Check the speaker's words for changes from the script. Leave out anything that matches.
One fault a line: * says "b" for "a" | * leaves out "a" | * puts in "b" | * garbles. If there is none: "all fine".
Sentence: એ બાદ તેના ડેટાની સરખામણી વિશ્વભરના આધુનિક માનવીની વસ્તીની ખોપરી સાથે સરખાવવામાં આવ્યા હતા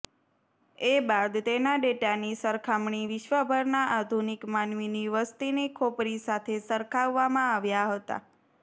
all fine